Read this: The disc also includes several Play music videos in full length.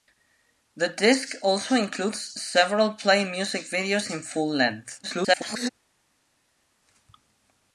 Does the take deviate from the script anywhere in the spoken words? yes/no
yes